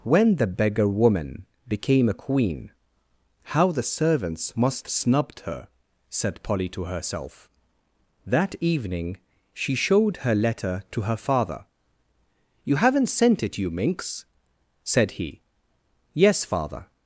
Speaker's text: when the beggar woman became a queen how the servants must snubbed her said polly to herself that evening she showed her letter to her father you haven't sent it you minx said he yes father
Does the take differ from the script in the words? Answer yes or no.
no